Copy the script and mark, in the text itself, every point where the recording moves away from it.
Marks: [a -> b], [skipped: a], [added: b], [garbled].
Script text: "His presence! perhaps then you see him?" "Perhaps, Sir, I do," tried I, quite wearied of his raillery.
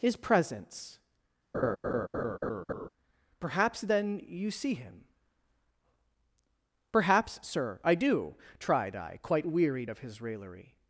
"His presence! perhaps then you see him?" "Perhaps, Sir, I do," tried I, quite wearied of his raillery.